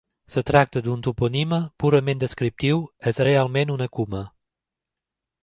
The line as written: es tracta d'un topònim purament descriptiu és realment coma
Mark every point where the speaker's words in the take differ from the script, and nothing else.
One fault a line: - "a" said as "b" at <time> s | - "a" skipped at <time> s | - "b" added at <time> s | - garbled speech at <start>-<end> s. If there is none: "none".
- "una" added at 3.8 s